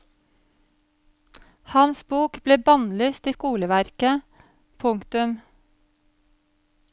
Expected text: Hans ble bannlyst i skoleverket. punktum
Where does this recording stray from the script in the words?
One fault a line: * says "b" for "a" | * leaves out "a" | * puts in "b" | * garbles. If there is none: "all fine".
* puts in "bok"